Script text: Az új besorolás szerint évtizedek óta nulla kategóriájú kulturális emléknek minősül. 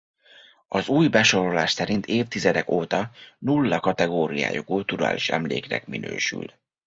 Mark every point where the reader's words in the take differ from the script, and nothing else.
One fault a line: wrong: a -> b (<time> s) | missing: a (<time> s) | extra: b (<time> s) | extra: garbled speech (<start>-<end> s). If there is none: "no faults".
no faults